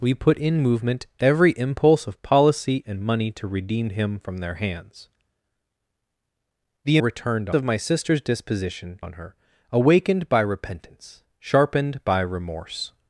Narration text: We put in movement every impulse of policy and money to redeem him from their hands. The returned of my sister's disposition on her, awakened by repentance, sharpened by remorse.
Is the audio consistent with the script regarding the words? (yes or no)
yes